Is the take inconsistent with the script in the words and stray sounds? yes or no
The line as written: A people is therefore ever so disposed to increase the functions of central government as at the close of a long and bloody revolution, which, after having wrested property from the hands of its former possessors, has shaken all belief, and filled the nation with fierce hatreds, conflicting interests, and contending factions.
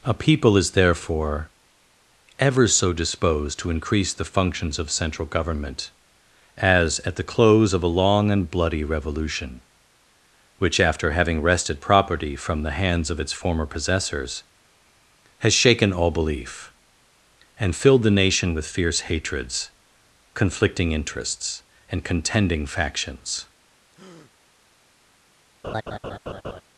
yes